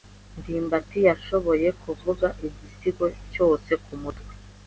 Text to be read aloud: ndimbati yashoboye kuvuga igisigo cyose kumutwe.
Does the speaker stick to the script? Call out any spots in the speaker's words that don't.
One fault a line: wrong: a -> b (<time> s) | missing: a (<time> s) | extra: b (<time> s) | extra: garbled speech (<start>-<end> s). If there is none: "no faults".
no faults